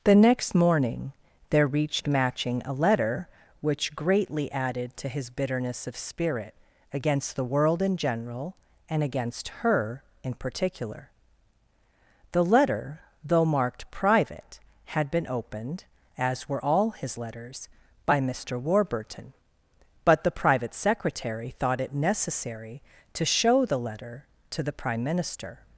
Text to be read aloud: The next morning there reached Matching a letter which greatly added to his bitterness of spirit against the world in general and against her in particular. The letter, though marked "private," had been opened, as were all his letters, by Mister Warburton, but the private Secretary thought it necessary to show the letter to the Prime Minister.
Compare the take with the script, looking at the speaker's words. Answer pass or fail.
pass